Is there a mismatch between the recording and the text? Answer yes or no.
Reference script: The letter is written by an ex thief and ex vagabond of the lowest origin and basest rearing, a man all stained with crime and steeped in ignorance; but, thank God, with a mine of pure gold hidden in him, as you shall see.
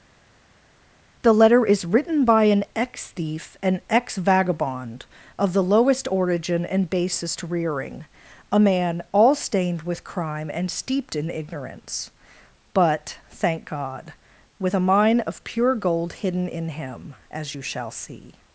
no